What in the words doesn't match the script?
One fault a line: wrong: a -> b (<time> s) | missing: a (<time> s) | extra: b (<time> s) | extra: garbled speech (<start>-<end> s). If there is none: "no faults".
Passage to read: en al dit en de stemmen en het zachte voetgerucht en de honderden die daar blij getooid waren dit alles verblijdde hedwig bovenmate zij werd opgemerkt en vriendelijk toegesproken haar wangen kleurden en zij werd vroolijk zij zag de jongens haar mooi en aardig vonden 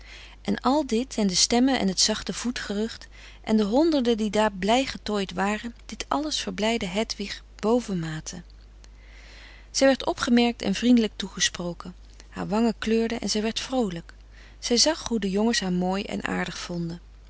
extra: hoe (15.1 s)